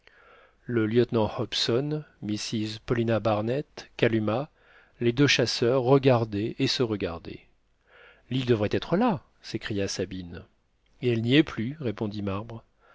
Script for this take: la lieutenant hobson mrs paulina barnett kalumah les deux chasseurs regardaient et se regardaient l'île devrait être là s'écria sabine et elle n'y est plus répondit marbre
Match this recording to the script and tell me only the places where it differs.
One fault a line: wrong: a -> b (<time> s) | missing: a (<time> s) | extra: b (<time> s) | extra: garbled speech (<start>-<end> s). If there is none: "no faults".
wrong: la -> le (0.7 s)